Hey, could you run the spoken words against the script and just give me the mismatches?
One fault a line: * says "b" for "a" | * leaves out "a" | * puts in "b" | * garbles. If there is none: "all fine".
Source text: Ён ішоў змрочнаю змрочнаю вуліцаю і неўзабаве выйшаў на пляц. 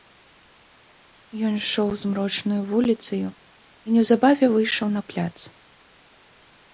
* leaves out "змрочнаю"